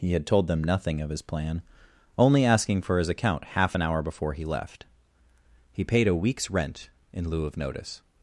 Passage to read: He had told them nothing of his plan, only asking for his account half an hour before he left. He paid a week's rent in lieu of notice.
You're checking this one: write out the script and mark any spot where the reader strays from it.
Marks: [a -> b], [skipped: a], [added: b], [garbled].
He had told them nothing of his plan, only asking for his account half an hour before he left. He paid a week's rent in lieu of notice.